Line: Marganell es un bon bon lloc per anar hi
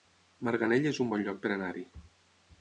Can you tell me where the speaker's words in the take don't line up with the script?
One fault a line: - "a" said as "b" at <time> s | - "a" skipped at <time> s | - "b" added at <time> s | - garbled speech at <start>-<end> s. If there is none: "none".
- "bon" skipped at 1.2 s